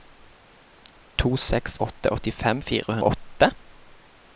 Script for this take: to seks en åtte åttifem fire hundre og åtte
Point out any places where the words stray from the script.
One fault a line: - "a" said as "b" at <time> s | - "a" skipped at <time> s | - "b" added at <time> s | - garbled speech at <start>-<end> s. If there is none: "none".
- "en" skipped at 1.8 s
- "hundre" skipped at 3.0 s